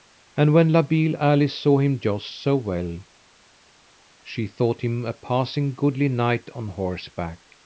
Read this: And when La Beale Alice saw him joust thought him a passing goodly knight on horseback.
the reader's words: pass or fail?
fail